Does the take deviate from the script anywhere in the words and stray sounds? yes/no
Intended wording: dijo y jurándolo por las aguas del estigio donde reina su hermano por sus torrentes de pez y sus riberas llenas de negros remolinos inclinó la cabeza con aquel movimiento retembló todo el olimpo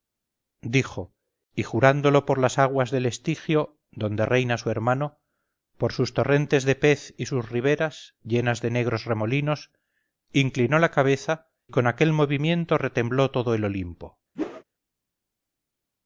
yes